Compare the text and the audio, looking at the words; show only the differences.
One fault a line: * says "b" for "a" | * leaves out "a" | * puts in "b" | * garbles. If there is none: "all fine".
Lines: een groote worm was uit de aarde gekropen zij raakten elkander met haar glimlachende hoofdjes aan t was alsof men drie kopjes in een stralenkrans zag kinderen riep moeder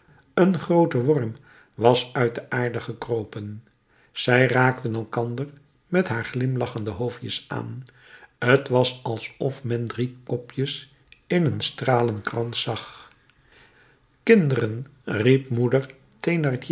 all fine